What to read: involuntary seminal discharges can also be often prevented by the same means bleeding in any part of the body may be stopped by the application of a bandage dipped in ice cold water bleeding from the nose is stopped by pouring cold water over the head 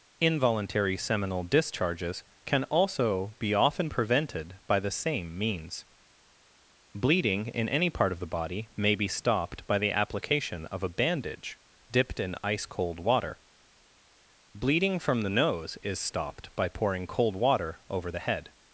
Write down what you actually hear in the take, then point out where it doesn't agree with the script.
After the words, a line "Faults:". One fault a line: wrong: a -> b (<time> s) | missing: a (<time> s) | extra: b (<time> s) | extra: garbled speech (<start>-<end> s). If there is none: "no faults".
involuntary seminal discharges can also be often prevented by the same means bleeding in any part of the body may be stopped by the application of a bandage dipped in ice cold water bleeding from the nose is stopped by pouring cold water over the head
Faults:
no faults